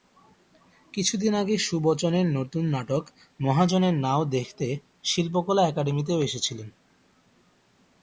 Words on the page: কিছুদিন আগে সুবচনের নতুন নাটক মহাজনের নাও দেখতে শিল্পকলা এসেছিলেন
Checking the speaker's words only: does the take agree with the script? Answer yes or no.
no